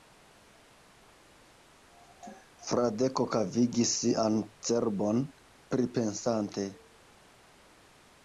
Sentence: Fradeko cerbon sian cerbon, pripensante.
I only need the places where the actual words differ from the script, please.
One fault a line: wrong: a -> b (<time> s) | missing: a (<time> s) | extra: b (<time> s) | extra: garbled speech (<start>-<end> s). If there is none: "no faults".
wrong: cerbon -> kavigis (3.4 s)